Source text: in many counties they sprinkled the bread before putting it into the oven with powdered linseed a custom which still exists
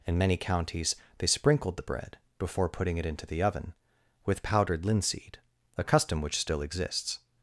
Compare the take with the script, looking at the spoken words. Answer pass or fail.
pass